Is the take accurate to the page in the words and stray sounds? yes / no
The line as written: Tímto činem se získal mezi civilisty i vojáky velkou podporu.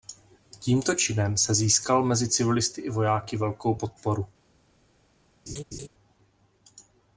no